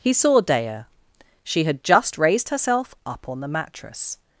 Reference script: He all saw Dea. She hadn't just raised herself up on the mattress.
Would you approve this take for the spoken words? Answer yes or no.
no